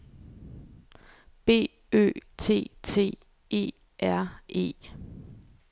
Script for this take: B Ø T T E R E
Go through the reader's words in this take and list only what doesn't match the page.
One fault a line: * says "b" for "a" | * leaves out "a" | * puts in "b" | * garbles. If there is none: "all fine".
all fine